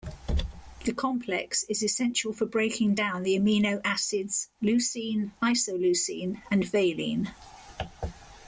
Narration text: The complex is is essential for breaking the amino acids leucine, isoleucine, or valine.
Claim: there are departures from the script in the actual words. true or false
true